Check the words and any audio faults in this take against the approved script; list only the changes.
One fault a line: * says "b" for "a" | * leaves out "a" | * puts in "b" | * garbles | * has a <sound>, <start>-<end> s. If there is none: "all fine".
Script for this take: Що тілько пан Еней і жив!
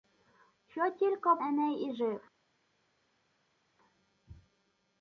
* leaves out "пан"